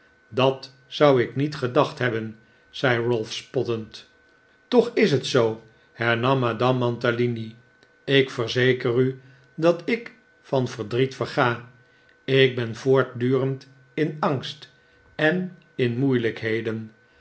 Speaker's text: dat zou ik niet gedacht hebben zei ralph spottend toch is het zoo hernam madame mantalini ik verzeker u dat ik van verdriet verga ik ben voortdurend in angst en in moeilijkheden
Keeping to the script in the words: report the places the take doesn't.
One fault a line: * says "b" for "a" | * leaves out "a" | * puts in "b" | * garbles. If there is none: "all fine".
all fine